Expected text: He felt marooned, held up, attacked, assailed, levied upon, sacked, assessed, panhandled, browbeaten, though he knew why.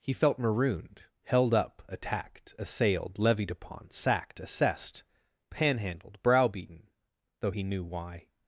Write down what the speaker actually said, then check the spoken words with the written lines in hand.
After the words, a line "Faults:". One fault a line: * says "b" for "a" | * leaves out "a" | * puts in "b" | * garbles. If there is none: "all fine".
He felt marooned, held up, attacked, assailed, levied upon, sacked, assessed, panhandled, browbeaten, though he knew why.
Faults:
all fine